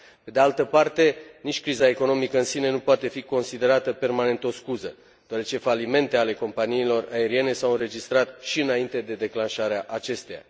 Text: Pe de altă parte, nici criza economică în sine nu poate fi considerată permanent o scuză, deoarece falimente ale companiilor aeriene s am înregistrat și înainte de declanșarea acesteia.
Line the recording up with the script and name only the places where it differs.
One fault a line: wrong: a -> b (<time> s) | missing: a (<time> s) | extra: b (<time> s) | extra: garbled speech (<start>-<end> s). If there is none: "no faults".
wrong: am -> au (7.6 s)